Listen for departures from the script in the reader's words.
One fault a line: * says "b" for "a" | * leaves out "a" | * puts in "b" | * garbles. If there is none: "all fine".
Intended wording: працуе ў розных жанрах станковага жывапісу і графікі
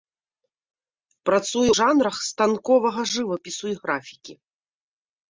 * leaves out "ў розных"